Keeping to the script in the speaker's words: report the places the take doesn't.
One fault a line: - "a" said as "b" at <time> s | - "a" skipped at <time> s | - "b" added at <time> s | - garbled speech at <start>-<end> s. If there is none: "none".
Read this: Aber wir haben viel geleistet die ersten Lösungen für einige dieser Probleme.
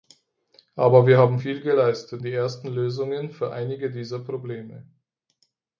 none